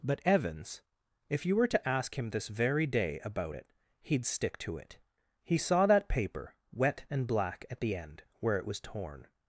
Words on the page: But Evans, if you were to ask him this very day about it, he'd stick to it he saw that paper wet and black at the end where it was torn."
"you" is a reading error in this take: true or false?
false